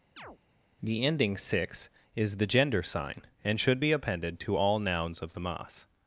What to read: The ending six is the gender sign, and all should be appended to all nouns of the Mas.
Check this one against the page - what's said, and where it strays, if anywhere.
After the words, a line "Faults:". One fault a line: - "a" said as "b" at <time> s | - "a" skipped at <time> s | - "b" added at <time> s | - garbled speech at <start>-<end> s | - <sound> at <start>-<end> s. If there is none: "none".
The ending six is the gender sign, and should be appended to all nouns of the Mas.
Faults:
- chirp at 0.2-0.4 s
- "all" skipped at 3.6 s